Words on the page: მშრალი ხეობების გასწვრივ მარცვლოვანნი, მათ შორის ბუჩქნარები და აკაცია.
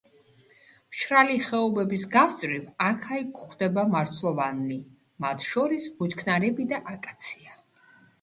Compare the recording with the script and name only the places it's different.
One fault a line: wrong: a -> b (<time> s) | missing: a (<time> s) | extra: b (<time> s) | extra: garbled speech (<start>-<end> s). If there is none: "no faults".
extra: აქა იქ გვხვდება (2.9 s)